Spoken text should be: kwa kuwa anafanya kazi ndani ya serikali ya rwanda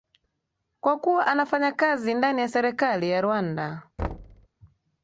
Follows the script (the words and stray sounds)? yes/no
no